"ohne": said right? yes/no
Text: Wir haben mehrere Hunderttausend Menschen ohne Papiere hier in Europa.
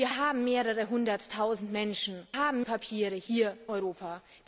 no